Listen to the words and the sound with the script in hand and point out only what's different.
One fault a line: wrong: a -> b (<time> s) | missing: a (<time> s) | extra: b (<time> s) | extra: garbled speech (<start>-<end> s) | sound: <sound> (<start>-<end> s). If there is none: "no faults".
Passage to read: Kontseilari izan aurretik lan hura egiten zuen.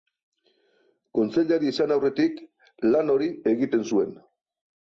wrong: hura -> hori (3.2 s)